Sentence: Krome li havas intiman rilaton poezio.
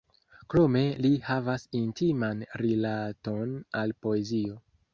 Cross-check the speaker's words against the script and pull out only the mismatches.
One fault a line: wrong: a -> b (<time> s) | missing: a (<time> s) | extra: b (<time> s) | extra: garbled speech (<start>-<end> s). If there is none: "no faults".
extra: al (3.8 s)